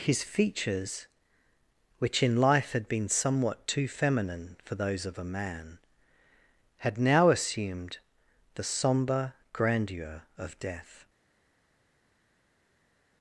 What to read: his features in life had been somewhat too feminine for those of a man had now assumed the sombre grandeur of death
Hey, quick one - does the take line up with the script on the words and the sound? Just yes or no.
no